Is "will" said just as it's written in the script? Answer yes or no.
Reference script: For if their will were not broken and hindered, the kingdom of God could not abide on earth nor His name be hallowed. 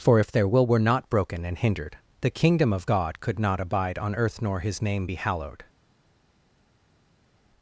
yes